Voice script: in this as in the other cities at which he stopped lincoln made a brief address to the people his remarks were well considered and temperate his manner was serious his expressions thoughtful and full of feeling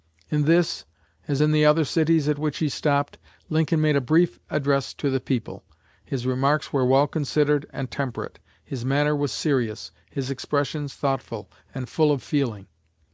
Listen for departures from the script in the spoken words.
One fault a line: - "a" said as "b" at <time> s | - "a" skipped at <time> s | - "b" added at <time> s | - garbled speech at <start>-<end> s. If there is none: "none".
none